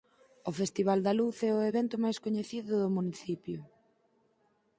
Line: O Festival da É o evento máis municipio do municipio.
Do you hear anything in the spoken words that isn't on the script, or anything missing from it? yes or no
yes